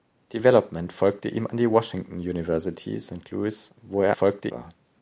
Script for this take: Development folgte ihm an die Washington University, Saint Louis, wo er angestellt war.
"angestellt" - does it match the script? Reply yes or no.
no